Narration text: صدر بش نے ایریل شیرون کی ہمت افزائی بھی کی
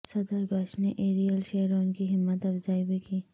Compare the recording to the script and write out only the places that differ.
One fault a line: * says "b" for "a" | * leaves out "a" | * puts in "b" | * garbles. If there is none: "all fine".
all fine